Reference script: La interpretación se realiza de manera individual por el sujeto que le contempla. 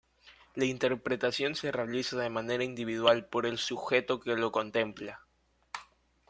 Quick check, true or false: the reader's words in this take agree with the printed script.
false